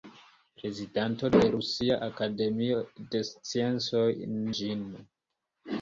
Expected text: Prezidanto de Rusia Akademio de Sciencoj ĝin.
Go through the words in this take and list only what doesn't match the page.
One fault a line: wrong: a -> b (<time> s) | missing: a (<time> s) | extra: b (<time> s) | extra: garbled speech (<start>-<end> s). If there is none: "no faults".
no faults